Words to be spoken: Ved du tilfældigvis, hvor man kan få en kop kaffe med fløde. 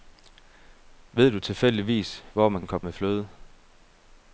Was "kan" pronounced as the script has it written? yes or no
no